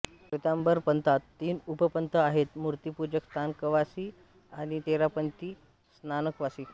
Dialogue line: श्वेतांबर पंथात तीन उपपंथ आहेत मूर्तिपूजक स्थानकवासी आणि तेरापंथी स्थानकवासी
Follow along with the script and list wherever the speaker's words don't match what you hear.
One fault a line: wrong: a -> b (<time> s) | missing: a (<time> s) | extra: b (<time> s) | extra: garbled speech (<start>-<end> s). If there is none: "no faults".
no faults